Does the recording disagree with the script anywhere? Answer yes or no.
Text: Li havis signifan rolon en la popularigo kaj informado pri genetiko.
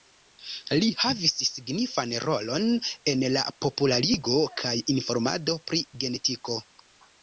no